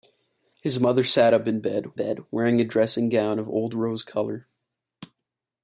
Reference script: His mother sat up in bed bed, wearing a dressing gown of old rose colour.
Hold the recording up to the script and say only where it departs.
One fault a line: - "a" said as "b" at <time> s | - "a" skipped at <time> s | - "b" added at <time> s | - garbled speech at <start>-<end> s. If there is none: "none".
none